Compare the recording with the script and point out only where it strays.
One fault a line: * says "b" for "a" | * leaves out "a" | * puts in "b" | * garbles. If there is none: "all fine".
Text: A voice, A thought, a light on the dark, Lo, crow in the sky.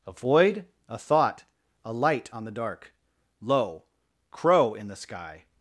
* says "void" for "voice"